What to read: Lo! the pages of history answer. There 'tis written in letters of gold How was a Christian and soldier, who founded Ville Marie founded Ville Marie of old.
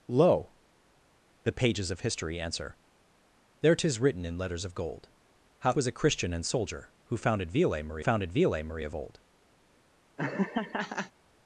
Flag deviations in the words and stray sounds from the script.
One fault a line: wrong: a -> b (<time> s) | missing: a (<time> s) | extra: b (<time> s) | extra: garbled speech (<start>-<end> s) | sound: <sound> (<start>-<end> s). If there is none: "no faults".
sound: laugh (10.2-11.1 s)